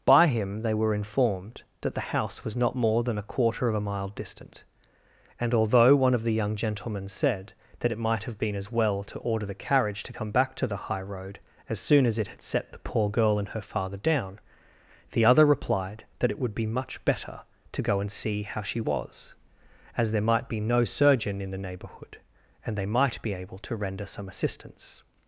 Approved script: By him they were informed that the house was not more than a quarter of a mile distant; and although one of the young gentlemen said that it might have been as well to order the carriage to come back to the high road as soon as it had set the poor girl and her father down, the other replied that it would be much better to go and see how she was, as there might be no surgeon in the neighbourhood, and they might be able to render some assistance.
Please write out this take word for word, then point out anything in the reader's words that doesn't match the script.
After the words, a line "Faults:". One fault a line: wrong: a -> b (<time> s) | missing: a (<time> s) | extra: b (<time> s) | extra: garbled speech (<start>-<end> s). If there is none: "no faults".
By him they were informed that the house was not more than a quarter of a mile distant; and although one of the young gentlemen said that it might have been as well to order the carriage to come back to the high road as soon as it had set the poor girl and her father down, the other replied that it would be much better to go and see how she was, as there might be no surgeon in the neighbourhood, and they might be able to render some assistance.
Faults:
no faults